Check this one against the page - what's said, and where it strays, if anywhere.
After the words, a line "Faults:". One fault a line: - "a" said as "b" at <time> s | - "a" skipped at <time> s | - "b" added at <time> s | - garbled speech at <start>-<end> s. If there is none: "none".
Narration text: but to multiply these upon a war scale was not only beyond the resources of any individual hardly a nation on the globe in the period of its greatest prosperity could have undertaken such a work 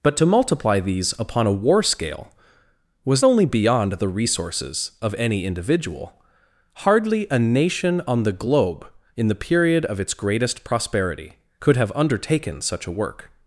but to multiply these upon a war scale was only beyond the resources of any individual hardly a nation on the globe in the period of its greatest prosperity could have undertaken such a work
Faults:
- "not" skipped at 3.2 s